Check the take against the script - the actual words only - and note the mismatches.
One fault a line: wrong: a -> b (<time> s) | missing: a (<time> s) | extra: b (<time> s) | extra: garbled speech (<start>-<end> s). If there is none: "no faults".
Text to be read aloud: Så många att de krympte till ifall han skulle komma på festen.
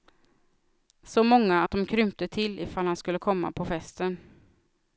no faults